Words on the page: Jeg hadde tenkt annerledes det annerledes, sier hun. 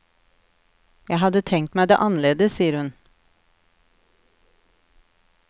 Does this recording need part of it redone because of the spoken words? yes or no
yes